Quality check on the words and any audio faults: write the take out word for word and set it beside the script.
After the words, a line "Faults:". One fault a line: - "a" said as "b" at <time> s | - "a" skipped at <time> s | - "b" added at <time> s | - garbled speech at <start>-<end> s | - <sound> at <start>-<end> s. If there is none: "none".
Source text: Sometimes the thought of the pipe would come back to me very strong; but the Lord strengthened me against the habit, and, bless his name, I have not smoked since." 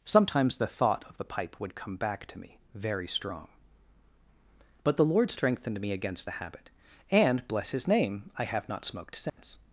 Sometimes the thought of the pipe would come back to me very strong; but the Lord strengthened me against the habit, and, bless his name, I have not smoked since."
Faults:
- dropout at 9.3-9.4 s